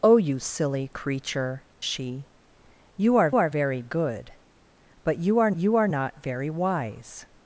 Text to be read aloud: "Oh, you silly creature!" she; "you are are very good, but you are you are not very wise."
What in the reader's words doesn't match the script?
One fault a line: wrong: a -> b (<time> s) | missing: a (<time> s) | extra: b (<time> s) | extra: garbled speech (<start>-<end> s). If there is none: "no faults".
no faults